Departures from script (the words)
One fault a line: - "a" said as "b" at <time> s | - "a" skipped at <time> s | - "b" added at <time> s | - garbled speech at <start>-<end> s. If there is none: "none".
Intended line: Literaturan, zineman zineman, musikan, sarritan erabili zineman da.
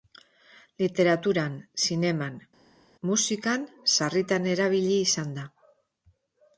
- "zineman" skipped at 2.4 s
- "zineman" said as "izan" at 5.1 s